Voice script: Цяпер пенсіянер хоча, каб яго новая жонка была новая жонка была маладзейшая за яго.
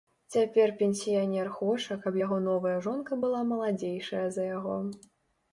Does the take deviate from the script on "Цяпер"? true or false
false